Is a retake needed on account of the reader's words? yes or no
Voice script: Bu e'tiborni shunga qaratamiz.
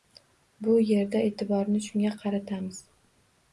yes